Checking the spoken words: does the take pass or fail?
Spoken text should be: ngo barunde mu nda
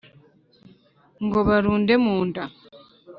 pass